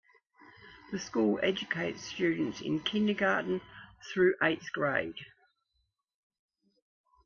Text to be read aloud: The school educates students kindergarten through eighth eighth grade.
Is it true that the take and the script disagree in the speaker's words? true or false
true